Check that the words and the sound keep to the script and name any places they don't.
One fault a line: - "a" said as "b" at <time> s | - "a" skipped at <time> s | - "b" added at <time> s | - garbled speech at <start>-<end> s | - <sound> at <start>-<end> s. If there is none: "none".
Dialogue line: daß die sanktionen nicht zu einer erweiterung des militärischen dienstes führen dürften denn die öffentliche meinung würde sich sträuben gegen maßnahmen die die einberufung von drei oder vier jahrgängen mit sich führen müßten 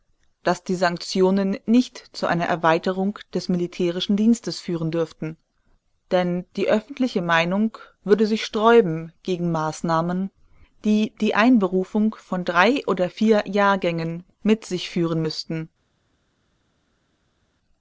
none